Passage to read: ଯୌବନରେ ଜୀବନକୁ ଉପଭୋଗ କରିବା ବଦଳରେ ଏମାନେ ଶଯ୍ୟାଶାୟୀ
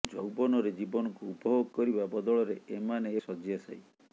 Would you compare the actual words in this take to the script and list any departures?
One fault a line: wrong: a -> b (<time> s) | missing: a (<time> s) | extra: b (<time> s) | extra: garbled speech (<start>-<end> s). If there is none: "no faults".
no faults